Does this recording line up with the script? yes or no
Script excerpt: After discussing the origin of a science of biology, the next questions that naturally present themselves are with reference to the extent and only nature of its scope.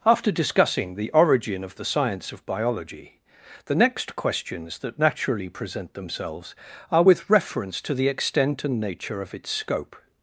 no